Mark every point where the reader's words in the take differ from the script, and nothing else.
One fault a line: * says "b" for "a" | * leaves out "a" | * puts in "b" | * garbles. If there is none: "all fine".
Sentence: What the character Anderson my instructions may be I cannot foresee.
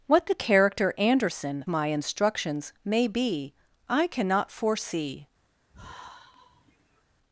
all fine